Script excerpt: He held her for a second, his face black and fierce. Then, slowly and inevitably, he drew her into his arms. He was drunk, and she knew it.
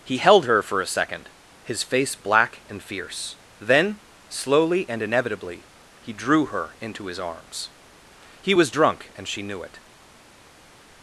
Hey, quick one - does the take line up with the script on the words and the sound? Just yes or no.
yes